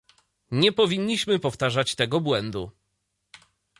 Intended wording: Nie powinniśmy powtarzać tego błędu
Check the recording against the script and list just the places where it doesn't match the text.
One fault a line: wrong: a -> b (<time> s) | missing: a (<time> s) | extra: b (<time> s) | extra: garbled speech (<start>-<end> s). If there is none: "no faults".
no faults